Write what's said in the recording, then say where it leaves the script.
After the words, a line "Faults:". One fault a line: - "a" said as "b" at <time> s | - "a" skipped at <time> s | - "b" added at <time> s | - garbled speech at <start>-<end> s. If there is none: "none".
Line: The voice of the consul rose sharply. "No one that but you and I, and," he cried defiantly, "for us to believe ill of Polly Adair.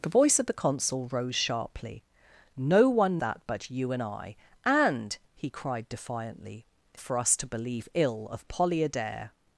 The voice of the consul rose sharply. "No one that but you and I, and," he cried defiantly, "for us to believe ill of Polly Adair.
Faults:
none